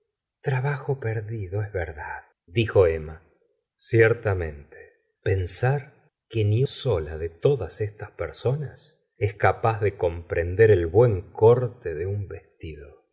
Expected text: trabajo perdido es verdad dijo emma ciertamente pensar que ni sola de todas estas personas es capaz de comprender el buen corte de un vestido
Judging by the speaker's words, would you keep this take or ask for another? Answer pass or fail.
pass